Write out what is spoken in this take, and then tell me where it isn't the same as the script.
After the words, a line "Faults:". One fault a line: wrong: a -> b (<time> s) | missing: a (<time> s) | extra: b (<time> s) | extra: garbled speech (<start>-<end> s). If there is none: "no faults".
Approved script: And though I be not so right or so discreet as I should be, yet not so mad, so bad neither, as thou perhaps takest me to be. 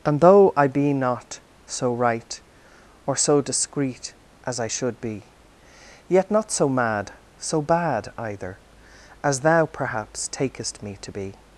And though I be not so right or so discreet as I should be, yet not so mad, so bad either, as thou perhaps takest me to be.
Faults:
wrong: neither -> either (8.2 s)